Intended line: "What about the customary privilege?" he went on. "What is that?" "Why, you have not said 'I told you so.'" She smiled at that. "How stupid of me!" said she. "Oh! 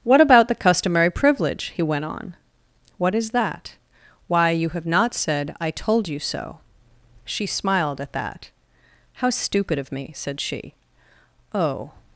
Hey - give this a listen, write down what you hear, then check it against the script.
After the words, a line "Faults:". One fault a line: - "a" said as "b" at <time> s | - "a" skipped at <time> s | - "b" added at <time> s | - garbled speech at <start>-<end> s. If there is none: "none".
"What about the customary privilege?" he went on. "What is that?" "Why, you have not said 'I told you so.'" She smiled at that. "How stupid of me!" said she. "Oh!
Faults:
none